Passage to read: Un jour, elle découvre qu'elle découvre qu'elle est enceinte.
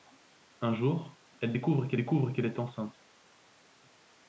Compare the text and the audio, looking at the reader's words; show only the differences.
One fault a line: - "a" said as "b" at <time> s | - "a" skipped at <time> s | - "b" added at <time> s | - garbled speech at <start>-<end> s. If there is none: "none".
none